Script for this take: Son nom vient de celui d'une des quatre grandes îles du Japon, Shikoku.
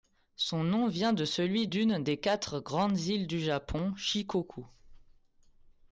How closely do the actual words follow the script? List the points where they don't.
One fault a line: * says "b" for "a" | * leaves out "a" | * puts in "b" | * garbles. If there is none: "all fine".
all fine